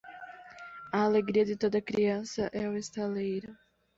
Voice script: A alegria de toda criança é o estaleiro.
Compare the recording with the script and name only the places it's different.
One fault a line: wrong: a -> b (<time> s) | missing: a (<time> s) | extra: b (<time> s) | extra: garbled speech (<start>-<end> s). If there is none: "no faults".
no faults